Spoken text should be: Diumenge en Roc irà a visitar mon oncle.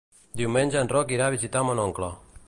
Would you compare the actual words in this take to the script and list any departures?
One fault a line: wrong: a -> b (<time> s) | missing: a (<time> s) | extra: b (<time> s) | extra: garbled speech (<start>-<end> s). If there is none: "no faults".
no faults